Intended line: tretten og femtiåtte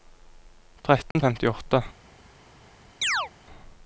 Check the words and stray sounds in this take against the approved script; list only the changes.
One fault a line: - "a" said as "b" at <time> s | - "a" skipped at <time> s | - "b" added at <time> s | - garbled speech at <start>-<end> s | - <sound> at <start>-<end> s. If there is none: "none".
- dropout at 1.1-1.2 s
- chirp at 3.0-3.3 s